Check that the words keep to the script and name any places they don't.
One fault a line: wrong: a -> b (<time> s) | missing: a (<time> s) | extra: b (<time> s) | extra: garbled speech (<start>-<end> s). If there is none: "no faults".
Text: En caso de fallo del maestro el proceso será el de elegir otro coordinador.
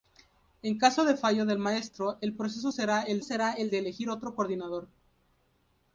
extra: será el (3.2 s)